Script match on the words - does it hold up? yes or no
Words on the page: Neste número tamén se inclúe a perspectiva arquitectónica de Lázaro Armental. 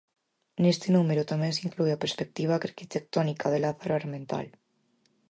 yes